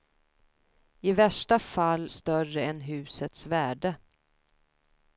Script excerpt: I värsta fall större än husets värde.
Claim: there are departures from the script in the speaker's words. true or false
false